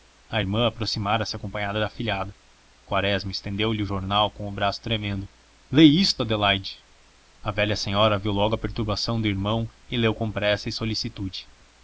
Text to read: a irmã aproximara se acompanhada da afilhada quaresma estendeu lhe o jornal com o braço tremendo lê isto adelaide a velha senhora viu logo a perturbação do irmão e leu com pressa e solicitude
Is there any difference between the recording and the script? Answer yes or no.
no